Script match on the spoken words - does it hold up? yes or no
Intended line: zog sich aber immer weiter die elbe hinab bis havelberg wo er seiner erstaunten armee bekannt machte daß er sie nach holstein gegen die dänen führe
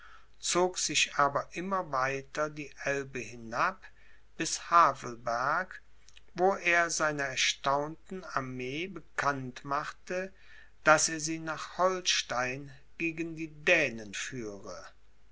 yes